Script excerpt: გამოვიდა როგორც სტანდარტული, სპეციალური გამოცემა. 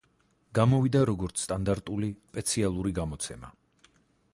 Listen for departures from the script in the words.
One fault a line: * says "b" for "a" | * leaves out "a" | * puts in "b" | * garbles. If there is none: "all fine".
all fine